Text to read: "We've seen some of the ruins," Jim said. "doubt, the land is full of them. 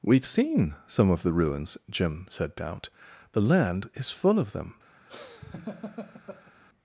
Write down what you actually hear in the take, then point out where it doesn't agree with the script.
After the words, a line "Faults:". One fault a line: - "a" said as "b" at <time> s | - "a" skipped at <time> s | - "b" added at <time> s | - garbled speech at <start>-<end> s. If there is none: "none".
"We've seen some of the ruins," Jim said. "doubt, the land is full of them.
Faults:
none